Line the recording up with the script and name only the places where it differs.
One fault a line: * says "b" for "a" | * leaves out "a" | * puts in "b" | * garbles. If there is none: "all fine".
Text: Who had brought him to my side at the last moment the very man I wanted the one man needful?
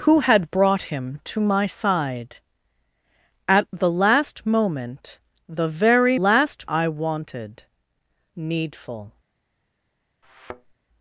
* says "last" for "man"
* leaves out "the one man"